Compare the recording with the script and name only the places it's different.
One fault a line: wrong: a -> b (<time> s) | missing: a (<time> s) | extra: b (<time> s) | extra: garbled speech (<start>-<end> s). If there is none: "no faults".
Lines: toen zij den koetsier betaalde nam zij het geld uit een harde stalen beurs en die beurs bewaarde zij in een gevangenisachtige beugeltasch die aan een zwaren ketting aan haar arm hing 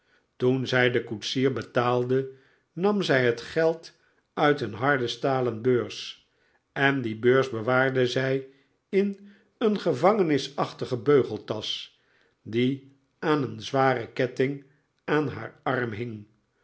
no faults